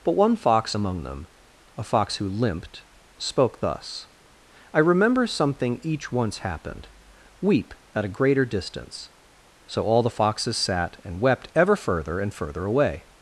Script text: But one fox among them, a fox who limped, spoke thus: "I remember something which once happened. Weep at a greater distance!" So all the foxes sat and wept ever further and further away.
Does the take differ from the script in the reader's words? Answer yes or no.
yes